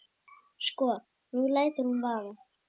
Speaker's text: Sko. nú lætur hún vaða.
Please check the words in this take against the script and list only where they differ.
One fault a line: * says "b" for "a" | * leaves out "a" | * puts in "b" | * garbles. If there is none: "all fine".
all fine